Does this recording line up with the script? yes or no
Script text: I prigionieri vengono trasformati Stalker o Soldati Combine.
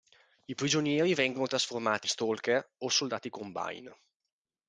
yes